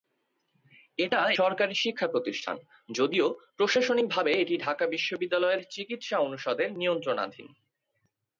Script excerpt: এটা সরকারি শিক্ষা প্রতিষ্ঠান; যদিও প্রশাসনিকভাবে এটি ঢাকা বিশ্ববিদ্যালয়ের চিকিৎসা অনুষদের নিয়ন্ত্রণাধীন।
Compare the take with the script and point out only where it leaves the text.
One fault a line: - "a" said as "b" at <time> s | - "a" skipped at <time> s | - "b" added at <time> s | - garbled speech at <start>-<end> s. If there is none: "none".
none